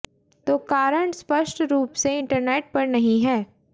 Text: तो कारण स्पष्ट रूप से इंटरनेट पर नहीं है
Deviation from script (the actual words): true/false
false